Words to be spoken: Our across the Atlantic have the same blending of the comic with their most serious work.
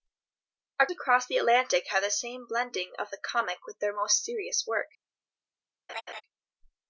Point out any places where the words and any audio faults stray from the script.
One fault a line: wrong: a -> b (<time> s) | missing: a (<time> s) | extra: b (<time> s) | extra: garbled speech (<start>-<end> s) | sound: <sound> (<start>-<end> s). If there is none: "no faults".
sound: laugh (5.9-6.2 s)